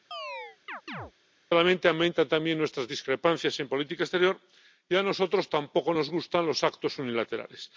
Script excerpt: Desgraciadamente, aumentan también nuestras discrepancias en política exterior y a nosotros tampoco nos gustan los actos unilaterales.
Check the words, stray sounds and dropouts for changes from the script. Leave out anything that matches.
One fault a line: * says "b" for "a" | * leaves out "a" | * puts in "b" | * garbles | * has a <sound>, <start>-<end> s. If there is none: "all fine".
* has a chirp, 0.1-1.1 s